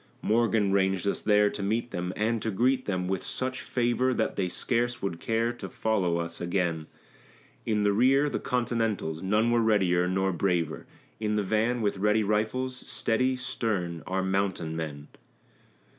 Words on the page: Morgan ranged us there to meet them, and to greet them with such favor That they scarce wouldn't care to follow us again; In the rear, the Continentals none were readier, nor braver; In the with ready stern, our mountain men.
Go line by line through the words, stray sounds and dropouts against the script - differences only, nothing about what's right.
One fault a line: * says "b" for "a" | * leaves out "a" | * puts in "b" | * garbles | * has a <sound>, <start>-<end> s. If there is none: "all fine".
* says "would" for "wouldn't"
* puts in "van"
* puts in "rifles steady"